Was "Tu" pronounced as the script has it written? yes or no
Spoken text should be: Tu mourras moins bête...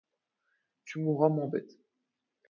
yes